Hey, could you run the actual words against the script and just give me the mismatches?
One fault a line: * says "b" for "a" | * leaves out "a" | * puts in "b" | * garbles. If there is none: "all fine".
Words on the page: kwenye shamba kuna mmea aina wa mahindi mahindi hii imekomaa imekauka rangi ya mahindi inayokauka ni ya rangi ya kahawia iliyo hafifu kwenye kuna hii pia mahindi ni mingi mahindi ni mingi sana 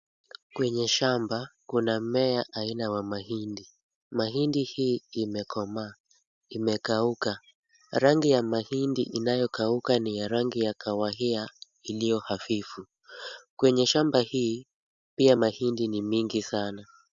* says "shamba" for "kuna"
* leaves out "mahindi ni mingi"